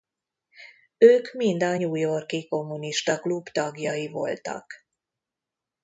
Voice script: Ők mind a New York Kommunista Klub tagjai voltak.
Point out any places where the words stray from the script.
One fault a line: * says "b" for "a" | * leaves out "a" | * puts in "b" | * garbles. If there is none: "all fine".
* puts in "i"